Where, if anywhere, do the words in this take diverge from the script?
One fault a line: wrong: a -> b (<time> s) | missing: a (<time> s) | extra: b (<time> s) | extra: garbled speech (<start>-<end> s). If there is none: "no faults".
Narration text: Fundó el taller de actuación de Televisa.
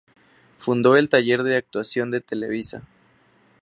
no faults